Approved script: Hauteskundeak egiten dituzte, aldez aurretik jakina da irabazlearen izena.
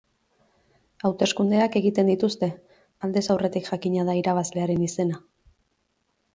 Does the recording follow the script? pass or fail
pass